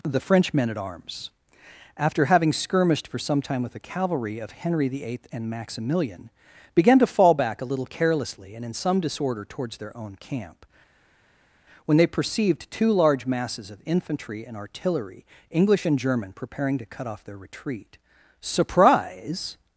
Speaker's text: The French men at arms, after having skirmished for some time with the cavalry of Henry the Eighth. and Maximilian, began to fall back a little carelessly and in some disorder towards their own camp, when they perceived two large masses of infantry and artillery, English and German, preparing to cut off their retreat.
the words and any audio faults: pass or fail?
fail